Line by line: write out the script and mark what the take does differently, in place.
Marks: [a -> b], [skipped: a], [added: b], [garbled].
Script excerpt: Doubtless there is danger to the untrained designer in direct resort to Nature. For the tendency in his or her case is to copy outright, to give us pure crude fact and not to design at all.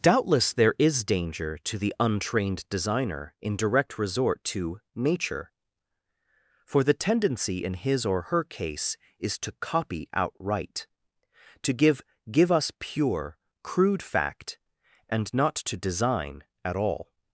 Doubtless there is danger to the untrained designer in direct resort to Nature. For the tendency in his or her case is to copy outright, to give [added: give] us pure crude fact and not to design at all.